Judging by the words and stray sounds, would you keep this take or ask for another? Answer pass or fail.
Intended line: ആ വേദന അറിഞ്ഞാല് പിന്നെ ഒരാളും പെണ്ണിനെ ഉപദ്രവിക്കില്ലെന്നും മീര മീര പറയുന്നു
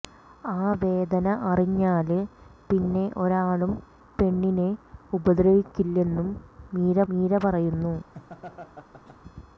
fail